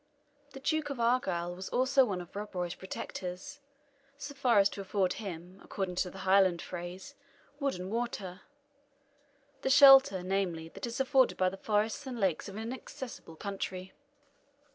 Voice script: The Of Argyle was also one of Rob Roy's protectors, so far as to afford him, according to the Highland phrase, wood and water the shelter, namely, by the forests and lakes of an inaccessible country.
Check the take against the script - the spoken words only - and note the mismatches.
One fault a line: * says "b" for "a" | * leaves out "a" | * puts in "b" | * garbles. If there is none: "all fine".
* puts in "Duke"
* puts in "that is afforded"